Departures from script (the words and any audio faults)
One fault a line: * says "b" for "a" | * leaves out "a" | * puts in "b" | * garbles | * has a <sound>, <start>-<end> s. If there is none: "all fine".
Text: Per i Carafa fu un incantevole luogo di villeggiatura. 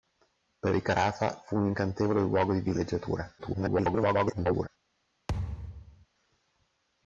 * garbles
* has a thud, 5.3-6.1 s